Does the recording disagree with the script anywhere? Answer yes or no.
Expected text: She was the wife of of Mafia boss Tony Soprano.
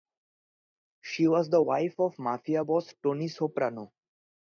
yes